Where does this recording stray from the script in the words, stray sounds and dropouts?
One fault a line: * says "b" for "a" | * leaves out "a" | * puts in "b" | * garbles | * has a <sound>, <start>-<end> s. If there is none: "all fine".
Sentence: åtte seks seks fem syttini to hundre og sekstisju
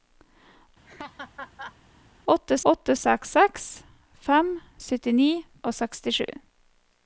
* has a laugh, 0.9-1.8 s
* puts in "åtte"
* leaves out "to hundre"